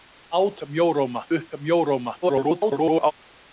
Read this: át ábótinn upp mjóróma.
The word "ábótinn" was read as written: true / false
false